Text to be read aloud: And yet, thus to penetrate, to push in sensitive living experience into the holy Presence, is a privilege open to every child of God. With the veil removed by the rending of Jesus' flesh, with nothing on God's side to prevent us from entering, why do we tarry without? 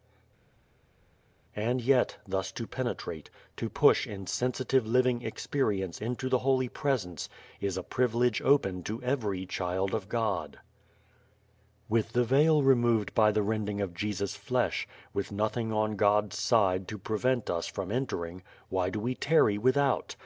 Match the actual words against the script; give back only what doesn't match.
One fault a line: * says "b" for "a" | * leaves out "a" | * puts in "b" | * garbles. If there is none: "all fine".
all fine